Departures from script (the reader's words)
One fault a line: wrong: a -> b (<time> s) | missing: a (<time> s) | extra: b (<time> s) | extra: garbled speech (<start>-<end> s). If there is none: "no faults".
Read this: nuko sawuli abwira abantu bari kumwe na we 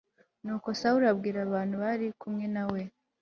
no faults